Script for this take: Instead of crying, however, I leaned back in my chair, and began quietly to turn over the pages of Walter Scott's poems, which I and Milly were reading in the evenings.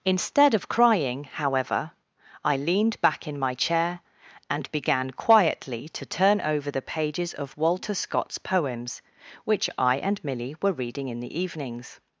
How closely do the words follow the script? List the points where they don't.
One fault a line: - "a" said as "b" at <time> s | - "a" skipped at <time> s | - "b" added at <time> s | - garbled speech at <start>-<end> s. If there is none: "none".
none